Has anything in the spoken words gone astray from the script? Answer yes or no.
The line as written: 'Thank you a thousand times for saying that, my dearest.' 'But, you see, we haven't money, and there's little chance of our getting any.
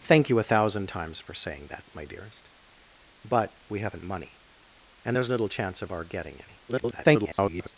yes